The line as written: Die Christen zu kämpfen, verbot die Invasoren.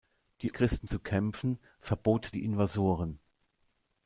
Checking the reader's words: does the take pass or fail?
pass